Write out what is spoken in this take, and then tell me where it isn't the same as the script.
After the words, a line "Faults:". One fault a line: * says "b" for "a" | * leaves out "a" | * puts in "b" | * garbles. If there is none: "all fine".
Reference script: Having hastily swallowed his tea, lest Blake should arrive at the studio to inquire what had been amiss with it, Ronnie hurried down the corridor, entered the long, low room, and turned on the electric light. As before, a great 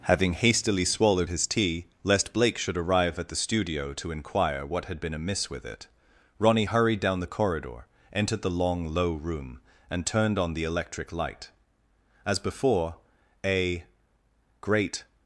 Having hastily swallowed his tea, lest Blake should arrive at the studio to inquire what had been amiss with it, Ronnie hurried down the corridor, entered the long, low room, and turned on the electric light. As before, a great
Faults:
all fine